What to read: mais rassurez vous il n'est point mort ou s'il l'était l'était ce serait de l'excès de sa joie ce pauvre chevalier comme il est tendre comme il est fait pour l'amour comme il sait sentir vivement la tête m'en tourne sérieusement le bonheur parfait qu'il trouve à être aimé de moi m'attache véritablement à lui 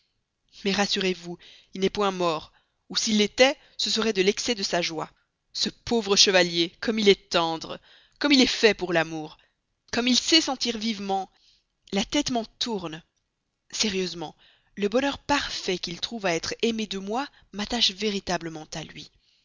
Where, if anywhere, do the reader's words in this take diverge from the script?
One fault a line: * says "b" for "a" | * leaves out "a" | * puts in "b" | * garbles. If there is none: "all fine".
* leaves out "l'était"